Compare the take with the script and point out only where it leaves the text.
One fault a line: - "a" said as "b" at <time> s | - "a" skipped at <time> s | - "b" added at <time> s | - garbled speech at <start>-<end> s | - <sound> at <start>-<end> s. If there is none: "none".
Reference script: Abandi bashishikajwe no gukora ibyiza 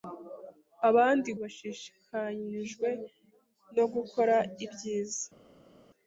none